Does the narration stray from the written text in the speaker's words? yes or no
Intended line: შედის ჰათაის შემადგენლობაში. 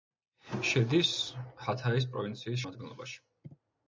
yes